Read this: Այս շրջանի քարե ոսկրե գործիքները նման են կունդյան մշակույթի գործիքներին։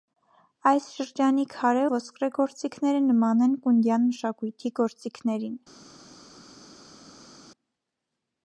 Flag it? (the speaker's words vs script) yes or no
no